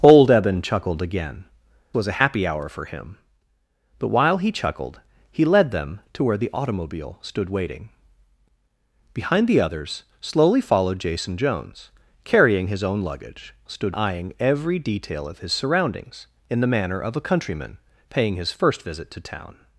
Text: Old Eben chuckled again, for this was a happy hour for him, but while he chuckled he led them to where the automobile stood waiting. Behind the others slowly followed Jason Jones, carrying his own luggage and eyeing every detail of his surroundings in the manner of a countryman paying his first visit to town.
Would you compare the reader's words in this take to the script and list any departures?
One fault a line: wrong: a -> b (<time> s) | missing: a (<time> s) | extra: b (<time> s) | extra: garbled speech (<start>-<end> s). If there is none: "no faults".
missing: for this (1.4 s)
wrong: and -> stood (13.7 s)